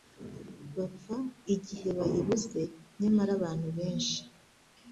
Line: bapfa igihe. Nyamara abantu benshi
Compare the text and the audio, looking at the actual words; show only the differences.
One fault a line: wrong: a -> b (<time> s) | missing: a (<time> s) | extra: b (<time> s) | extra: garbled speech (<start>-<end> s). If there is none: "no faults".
extra: bayibuze (2.0 s)